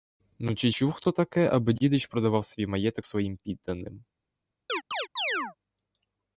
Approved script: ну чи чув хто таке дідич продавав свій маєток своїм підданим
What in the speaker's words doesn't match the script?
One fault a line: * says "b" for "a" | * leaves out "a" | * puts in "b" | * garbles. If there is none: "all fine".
* puts in "аби"